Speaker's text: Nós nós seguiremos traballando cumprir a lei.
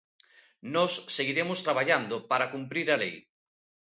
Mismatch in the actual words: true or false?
true